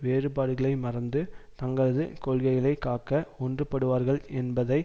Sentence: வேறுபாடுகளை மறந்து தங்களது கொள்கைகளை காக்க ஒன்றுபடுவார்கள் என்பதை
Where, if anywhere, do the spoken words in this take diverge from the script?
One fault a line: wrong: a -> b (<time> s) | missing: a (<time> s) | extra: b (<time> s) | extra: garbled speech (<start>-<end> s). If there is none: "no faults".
no faults